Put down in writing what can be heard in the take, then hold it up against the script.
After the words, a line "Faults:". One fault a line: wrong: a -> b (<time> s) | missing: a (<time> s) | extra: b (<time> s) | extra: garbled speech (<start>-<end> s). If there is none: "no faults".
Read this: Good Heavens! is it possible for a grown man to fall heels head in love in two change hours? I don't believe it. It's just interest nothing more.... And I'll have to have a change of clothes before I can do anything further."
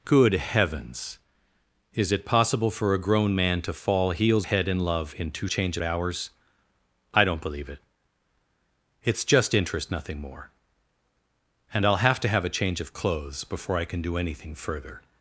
Good Heavens! is it possible for a grown man to fall heels head in love in two change hours? I don't believe it. It's just interest nothing more.... And I'll have to have a change of clothes before I can do anything further."
Faults:
no faults